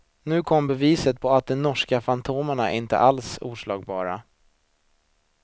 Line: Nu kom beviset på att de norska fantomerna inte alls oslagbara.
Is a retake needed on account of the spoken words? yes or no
no